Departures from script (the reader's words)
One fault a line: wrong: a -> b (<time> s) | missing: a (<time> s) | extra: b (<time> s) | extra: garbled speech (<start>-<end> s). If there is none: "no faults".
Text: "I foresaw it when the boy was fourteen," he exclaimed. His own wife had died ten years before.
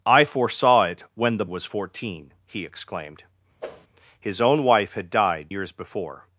missing: boy (1.4 s)
missing: ten (5.5 s)